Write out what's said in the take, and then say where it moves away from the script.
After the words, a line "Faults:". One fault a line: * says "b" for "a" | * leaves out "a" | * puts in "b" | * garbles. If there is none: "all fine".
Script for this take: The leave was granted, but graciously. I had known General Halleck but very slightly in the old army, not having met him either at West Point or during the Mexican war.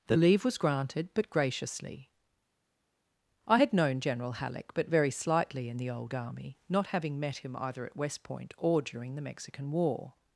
The leave was granted, but graciously. I had known General Halleck but very slightly in the old army, not having met him either at West Point or during the Mexican war.
Faults:
all fine